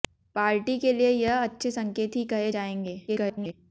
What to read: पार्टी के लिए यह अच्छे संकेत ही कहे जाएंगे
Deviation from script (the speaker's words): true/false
true